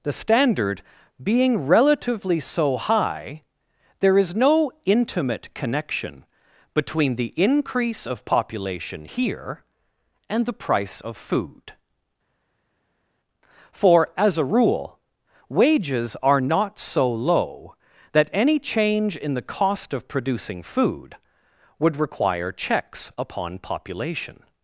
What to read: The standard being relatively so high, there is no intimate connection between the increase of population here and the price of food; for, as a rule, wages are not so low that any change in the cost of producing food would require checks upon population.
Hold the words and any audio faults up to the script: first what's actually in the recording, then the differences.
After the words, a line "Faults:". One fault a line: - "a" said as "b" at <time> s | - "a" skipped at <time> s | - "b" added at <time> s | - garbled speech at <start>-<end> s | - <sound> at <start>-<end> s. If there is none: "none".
The standard being relatively so high, there is no intimate connection between the increase of population here and the price of food; for, as a rule, wages are not so low that any change in the cost of producing food would require checks upon population.
Faults:
none